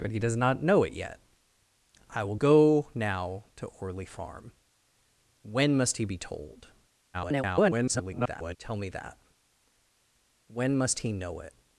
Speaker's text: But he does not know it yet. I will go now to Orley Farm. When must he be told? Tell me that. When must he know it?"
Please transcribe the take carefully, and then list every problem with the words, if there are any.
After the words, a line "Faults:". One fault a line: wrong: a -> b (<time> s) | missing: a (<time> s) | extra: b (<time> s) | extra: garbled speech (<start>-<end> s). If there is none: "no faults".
But he does not know it yet. I will go now to Orley Farm. When must he be told? [garbled] Tell me that. When must he know it?"
Faults:
extra: garbled speech (7.1-8.6 s)